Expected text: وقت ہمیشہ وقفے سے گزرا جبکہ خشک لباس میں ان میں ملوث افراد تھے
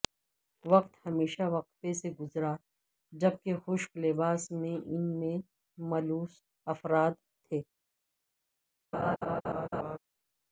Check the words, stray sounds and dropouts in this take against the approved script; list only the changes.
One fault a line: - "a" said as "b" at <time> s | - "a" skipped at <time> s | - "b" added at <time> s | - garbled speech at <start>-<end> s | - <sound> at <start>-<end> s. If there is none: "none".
- laugh at 8.9-10.0 s